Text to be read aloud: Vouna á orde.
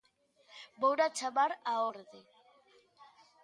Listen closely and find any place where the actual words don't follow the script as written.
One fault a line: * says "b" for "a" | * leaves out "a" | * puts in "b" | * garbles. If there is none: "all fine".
* puts in "chamar"